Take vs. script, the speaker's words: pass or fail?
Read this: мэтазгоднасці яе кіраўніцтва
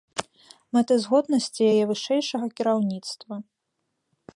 fail